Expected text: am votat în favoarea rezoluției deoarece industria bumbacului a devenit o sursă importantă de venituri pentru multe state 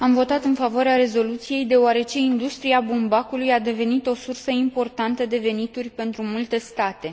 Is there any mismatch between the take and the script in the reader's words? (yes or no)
no